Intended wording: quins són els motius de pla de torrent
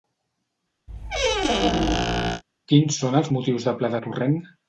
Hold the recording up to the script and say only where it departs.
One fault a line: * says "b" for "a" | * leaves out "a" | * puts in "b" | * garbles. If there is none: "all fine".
all fine